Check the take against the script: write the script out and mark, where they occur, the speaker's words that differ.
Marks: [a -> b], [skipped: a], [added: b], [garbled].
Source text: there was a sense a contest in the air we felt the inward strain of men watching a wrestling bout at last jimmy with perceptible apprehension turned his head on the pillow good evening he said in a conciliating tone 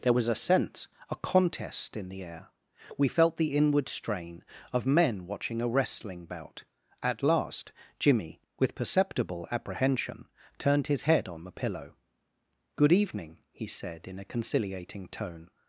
there was a sense a contest in the air we felt the inward strain of men watching a wrestling bout at last jimmy with perceptible apprehension turned his head on the pillow good evening he said in a conciliating tone